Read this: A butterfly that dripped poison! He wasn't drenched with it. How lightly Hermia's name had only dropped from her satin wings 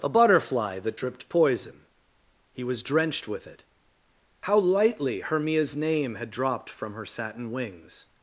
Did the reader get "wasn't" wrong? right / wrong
wrong